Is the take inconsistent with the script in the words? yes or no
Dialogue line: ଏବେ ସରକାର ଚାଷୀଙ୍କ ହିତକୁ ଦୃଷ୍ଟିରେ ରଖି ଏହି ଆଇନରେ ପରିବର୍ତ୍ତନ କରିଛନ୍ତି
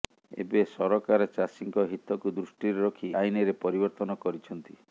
yes